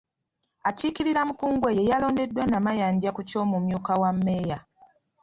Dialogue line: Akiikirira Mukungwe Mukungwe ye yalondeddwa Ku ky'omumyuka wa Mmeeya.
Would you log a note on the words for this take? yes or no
yes